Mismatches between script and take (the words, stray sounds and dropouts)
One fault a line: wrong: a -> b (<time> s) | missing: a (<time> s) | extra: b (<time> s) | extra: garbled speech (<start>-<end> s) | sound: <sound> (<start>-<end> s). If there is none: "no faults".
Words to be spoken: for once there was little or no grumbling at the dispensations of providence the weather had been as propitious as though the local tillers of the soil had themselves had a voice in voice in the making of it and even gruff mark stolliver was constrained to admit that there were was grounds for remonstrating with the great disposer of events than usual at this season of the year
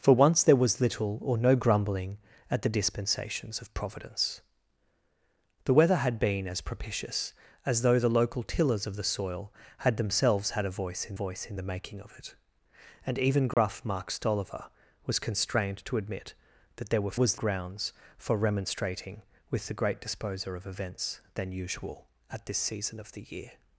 sound: dropout (13.5-13.6 s)